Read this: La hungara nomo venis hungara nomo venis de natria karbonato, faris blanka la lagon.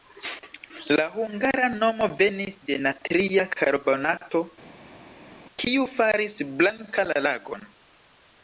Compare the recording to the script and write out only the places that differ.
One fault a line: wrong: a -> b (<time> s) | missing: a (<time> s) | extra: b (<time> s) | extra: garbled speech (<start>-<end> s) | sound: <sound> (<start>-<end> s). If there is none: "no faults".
missing: hungara nomo venis (2.5 s)
extra: kiu (5.6 s)